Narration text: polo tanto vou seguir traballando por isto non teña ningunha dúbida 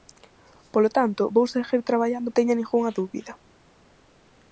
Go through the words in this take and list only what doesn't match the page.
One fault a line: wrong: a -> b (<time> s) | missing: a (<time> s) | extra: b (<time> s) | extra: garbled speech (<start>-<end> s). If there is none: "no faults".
missing: por isto non (2.3 s)